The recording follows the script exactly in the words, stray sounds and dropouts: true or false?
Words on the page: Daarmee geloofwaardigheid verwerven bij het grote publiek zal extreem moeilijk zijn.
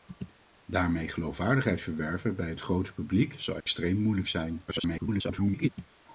false